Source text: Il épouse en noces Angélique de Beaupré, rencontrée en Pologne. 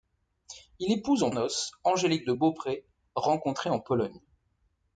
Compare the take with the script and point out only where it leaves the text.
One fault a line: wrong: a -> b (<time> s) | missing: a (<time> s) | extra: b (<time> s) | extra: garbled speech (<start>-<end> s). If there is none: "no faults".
no faults